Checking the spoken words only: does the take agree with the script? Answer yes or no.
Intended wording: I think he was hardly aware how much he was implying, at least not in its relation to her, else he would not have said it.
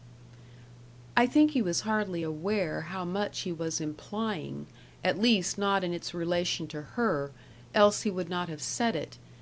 yes